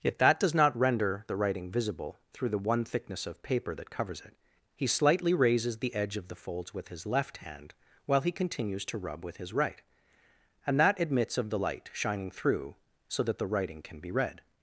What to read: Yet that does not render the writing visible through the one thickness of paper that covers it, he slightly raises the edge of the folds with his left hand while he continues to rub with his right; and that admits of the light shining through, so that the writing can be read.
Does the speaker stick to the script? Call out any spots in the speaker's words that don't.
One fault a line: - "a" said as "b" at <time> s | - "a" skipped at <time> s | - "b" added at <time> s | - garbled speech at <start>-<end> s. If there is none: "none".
none